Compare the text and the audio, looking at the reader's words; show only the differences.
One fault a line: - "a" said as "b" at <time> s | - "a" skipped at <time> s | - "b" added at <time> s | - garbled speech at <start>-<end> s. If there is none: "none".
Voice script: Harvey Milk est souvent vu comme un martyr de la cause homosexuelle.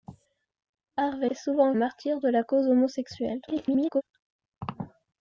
- "Milk" skipped at 1.3 s
- "vu comme" skipped at 1.7 s
- garbled speech at 3.5-4.0 s